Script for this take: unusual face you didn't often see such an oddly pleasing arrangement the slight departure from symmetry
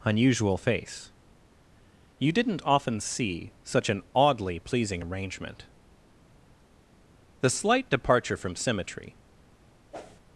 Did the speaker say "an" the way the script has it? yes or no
yes